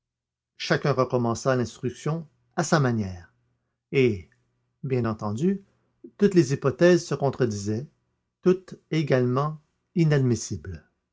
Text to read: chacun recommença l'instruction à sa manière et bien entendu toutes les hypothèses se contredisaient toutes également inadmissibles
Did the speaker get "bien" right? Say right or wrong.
right